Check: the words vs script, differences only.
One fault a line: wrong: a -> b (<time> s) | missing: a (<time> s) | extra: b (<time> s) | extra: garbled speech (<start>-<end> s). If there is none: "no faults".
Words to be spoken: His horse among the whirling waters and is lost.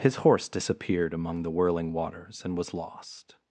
extra: disappeared (0.5 s)
wrong: is -> was (2.6 s)